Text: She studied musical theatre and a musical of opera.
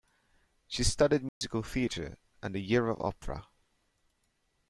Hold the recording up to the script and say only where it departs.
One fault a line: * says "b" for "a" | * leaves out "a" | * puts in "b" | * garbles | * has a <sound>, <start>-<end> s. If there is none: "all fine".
* has a dropout, 1.3-1.4 s
* says "year" for "musical"